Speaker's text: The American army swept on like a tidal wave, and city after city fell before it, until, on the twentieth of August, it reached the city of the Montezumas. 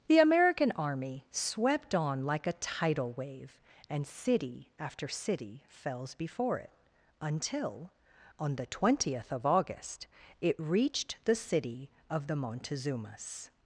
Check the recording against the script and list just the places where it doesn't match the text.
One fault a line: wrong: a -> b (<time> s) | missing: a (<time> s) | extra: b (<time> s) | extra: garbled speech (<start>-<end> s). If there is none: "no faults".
wrong: fell -> fells (5.7 s)